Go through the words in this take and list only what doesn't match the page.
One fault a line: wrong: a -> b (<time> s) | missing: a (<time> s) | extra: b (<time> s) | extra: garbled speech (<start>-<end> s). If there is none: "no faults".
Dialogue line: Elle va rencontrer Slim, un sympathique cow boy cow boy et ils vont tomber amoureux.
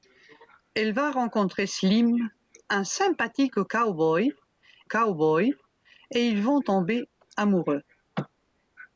no faults